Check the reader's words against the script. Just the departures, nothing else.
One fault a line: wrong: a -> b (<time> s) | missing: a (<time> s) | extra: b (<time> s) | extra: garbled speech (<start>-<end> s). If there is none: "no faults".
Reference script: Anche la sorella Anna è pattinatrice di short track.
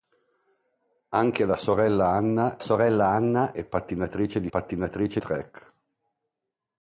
extra: sorella Anna (2.6 s)
wrong: short -> pattinatrice (4.5 s)